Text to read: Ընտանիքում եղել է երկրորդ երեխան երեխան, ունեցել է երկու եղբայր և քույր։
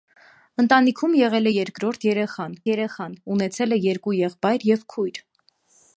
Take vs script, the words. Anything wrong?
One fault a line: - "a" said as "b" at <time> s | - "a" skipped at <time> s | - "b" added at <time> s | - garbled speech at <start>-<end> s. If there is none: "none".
none